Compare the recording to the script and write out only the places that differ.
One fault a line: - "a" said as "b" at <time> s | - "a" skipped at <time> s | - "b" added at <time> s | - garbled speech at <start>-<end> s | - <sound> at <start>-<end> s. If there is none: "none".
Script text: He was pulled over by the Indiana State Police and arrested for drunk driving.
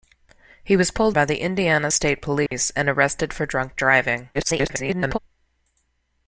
- "over" skipped at 1.1 s
- dropout at 2.5-2.5 s
- garbled speech at 4.3-5.2 s